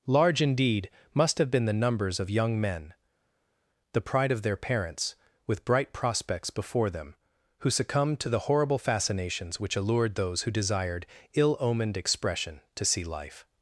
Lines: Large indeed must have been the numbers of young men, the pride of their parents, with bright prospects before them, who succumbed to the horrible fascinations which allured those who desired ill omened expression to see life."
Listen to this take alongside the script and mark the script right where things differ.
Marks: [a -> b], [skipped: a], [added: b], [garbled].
Large indeed must have been the numbers of young men, the pride of their parents, with bright prospects before them, who succumbed to the horrible fascinations which allured those who desired ill omened expression to see life."